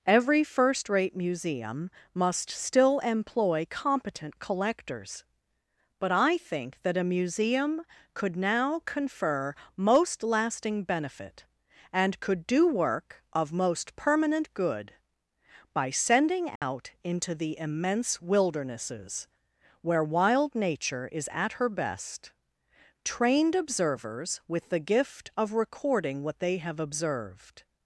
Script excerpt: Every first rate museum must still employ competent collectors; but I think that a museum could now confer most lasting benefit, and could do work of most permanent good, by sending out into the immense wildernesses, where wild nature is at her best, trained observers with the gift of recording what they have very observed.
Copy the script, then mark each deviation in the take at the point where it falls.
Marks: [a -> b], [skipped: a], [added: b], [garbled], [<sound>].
Every first rate museum must still employ competent collectors; but I think that a museum could now confer most lasting benefit, and could do work of most permanent good, by sending out [dropout] into the immense wildernesses, where wild nature is at her best, trained observers with the gift of recording what they have [skipped: very] observed.